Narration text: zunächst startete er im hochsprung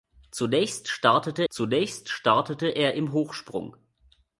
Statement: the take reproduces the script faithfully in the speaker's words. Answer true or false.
false